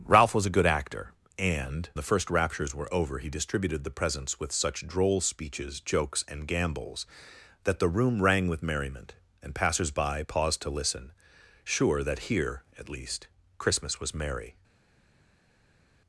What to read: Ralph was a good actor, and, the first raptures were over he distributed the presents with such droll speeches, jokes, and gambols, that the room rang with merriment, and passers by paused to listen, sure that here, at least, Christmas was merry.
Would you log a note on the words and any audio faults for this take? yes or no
no